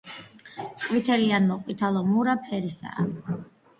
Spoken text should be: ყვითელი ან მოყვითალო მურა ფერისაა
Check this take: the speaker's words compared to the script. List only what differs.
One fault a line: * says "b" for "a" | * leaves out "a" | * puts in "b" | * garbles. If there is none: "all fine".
all fine